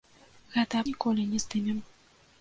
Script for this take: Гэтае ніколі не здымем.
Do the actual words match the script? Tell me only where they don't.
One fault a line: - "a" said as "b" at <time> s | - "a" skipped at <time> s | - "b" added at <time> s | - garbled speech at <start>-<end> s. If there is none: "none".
none